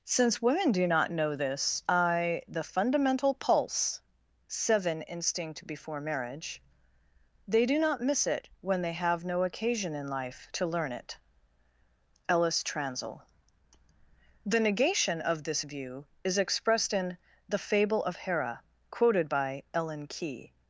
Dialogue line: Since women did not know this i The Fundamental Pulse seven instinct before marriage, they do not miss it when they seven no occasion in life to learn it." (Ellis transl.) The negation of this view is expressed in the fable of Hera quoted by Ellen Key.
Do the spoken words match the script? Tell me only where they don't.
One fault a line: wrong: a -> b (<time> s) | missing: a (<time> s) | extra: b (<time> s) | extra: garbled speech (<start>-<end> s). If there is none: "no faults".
wrong: did -> do (0.7 s)
wrong: seven -> have (8.9 s)